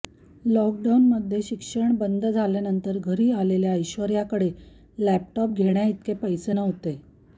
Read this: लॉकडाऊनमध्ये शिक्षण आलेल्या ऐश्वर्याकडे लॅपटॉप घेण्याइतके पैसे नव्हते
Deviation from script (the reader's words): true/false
true